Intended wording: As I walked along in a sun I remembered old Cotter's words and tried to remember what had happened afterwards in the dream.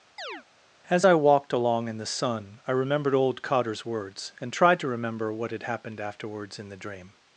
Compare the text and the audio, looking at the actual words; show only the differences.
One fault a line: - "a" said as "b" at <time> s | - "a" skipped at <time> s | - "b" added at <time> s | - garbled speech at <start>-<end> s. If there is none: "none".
- "a" said as "the" at 2.0 s